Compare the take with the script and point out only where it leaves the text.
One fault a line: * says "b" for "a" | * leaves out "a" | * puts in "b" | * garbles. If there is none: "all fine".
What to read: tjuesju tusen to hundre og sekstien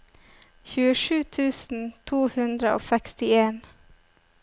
all fine